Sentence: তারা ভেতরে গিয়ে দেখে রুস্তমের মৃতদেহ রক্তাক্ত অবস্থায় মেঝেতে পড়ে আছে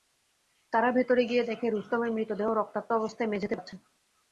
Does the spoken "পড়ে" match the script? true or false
false